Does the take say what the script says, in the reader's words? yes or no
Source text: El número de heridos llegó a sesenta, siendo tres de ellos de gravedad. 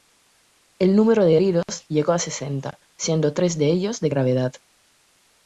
yes